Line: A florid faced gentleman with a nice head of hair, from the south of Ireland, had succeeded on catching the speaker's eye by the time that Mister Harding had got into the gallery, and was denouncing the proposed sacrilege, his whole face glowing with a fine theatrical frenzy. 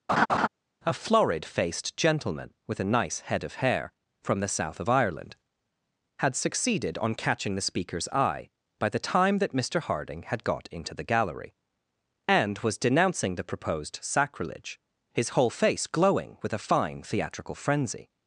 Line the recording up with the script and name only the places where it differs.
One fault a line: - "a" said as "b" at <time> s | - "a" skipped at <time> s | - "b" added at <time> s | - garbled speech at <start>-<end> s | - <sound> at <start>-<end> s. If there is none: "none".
- laugh at 0.1-0.5 s